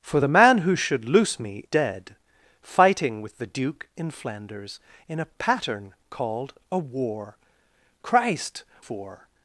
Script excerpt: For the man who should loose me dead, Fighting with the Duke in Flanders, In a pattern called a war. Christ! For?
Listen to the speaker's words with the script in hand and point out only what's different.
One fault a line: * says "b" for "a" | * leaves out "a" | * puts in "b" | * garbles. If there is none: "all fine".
all fine